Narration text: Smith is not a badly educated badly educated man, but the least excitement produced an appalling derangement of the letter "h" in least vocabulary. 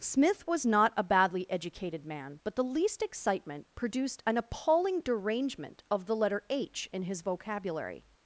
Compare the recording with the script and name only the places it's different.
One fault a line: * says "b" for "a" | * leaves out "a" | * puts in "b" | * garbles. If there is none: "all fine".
* says "was" for "is"
* leaves out "badly educated"
* says "his" for "least"